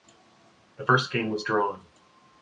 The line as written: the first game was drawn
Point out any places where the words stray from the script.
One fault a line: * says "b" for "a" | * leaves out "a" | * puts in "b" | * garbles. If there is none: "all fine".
all fine